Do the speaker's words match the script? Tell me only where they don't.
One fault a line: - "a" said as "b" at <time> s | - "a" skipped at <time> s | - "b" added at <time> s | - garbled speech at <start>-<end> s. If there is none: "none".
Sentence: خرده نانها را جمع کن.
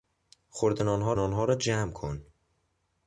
- "نانها" added at 1.1 s